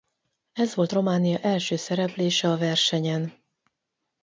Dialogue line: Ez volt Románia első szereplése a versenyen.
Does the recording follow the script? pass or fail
pass